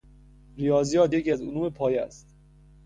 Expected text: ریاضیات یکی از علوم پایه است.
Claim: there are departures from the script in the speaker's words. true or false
false